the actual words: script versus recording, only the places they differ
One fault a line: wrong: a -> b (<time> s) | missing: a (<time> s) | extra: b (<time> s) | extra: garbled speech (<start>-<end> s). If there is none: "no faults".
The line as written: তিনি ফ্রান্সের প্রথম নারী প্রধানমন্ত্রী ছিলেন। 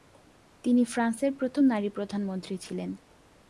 no faults